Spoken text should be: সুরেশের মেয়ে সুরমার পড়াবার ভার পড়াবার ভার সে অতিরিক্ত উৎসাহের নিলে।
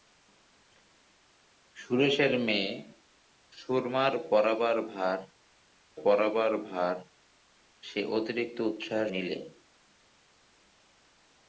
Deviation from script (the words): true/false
false